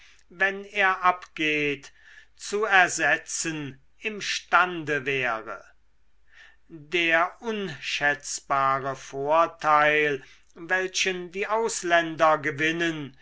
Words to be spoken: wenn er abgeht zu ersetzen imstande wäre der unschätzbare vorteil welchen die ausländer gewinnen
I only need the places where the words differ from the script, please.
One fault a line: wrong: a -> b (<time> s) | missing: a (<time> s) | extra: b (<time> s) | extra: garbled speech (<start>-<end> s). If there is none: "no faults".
no faults